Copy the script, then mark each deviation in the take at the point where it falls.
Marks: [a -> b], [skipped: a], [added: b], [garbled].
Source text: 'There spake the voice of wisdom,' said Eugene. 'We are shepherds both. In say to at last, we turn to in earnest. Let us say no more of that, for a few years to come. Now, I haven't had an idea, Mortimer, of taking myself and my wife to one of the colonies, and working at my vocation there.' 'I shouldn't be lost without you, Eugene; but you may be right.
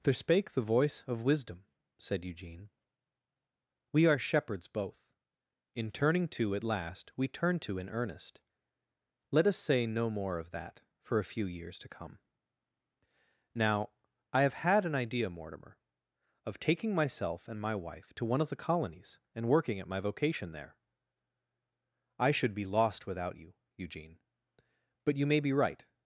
'There spake the voice of wisdom,' said Eugene. 'We are shepherds both. In [say -> turning] to at last, we turn to in earnest. Let us say no more of that, for a few years to come. Now, I [haven't -> have] had an idea, Mortimer, of taking myself and my wife to one of the colonies, and working at my vocation there.' 'I [shouldn't -> should] be lost without you, Eugene; but you may be right.